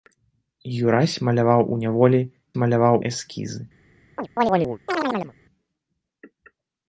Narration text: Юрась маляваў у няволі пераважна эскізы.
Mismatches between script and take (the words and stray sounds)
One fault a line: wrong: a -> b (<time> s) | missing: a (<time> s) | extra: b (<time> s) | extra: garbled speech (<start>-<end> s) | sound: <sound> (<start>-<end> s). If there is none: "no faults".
wrong: пераважна -> маляваў (2.6 s)
sound: chirp (4.2-5.3 s)